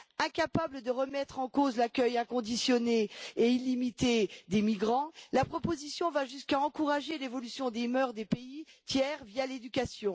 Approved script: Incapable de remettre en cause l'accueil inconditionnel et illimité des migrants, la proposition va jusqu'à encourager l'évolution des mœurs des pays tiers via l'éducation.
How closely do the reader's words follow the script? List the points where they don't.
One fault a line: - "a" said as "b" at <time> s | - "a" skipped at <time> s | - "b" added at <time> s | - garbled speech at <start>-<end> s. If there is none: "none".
none